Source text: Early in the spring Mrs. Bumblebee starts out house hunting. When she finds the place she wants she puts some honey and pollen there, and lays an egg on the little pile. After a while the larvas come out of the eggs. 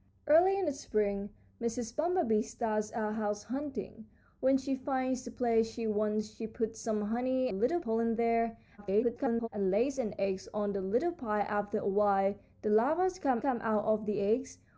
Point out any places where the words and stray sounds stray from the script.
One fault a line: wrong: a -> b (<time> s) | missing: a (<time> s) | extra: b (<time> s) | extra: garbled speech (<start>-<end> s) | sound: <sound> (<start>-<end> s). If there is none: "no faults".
wrong: and -> little (7.5 s)
extra: garbled speech (8.8-9.5 s)
extra: come (13.4 s)